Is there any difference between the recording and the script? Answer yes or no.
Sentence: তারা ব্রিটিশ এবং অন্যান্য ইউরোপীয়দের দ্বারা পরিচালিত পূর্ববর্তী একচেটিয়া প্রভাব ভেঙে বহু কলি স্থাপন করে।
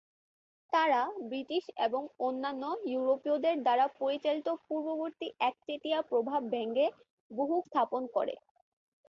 yes